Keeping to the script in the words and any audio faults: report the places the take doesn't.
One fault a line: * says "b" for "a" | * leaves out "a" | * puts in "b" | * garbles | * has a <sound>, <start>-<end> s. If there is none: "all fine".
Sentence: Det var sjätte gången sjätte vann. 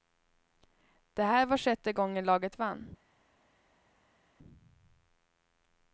* puts in "här"
* says "laget" for "sjätte"